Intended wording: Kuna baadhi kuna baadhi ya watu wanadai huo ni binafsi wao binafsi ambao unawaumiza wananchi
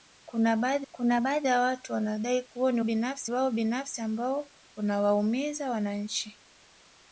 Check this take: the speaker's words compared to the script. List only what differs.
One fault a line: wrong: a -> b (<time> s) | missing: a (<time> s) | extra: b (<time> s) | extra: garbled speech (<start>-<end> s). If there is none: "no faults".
no faults